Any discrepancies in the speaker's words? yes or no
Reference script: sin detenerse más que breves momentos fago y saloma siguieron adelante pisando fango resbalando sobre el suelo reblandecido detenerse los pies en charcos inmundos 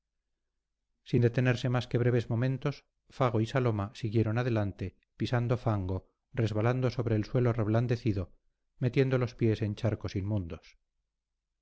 yes